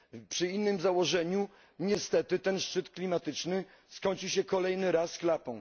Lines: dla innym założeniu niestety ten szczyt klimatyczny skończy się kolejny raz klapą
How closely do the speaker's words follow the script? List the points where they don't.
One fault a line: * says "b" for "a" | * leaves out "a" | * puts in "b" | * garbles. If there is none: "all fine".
* says "przy" for "dla"